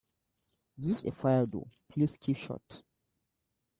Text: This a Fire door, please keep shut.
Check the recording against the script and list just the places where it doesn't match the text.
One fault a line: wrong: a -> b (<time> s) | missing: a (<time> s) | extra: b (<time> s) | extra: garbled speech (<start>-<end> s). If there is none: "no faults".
no faults